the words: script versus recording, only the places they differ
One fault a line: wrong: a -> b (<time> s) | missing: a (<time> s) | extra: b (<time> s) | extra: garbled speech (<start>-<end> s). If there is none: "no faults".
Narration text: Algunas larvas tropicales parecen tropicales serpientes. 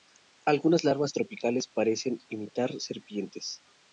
wrong: tropicales -> imitar (2.3 s)